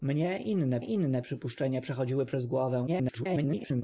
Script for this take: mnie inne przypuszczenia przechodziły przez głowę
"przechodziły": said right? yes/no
yes